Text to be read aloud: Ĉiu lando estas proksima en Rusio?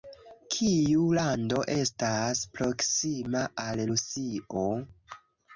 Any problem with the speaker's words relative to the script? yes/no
yes